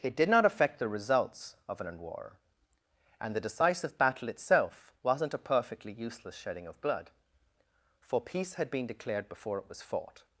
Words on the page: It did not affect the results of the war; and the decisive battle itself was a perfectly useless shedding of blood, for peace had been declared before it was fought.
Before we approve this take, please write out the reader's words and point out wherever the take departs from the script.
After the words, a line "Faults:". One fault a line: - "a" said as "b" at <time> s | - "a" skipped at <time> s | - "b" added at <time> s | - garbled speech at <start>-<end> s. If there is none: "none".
It did not affect the results of an war; and the decisive battle itself wasn't a perfectly useless shedding of blood, for peace had been declared before it was fought.
Faults:
- "the" said as "an" at 1.8 s
- "was" said as "wasn't" at 5.0 s